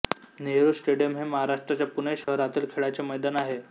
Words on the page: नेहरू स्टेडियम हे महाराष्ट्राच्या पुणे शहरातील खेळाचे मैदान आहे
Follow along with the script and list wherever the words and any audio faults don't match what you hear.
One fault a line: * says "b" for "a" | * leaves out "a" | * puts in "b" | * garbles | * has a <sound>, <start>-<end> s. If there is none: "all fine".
* has a dropout, 2.2-2.3 s